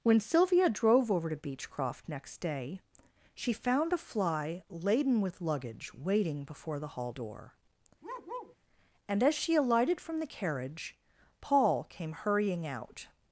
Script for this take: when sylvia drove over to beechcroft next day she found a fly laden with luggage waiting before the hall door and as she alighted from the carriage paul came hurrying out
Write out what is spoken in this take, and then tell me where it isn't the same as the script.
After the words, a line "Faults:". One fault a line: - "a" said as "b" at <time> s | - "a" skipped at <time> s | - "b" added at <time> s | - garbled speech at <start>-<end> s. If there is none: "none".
when sylvia drove over to beechcroft next day she found a fly laden with luggage waiting before the hall door and as she alighted from the carriage paul came hurrying out
Faults:
none